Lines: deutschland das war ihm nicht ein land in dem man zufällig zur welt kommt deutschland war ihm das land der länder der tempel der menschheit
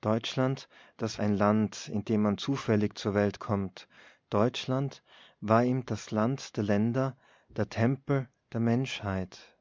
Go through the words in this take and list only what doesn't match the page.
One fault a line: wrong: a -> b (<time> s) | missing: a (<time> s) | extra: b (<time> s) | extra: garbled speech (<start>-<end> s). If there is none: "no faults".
missing: war ihm nicht (1.2 s)